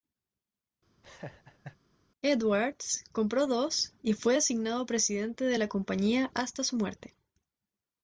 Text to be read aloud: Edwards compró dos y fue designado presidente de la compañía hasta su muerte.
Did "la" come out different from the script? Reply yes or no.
no